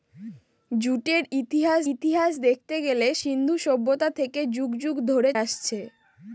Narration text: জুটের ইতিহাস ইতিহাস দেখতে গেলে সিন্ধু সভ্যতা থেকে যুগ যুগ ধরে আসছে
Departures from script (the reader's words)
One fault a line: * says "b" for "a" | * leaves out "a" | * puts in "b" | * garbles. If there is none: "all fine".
all fine